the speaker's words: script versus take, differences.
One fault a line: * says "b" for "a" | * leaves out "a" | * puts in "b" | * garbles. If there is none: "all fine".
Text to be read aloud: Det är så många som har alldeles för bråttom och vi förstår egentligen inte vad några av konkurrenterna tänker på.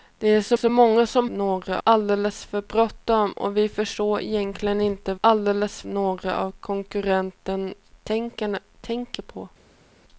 * puts in "så"
* says "några" for "har"
* says "alldeles" for "vad"